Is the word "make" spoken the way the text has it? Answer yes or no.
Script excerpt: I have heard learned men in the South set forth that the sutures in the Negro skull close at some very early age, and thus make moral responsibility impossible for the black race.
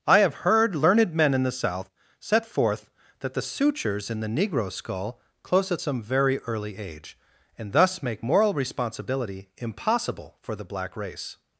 yes